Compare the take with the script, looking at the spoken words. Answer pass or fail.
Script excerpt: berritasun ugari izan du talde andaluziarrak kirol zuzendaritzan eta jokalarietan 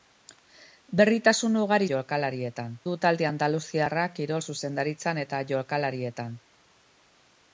fail